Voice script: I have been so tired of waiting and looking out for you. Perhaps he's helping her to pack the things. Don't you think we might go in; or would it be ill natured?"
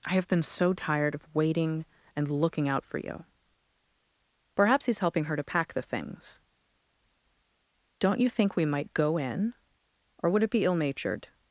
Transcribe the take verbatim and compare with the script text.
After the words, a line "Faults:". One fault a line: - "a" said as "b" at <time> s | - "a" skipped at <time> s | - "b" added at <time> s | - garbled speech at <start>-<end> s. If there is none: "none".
I have been so tired of waiting and looking out for you. Perhaps he's helping her to pack the things. Don't you think we might go in; or would it be ill natured?"
Faults:
none